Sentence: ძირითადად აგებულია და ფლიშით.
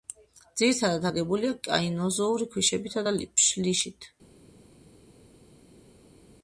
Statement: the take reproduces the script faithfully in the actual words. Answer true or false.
false